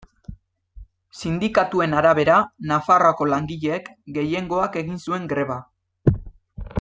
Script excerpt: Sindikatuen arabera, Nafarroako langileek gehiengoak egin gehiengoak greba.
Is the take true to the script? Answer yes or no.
no